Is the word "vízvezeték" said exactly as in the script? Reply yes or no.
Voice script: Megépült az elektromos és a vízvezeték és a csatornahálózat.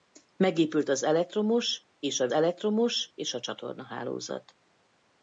no